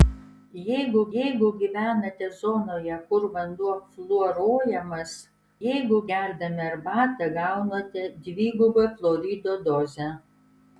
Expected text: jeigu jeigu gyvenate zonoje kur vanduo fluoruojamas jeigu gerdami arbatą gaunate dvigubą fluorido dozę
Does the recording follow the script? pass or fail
pass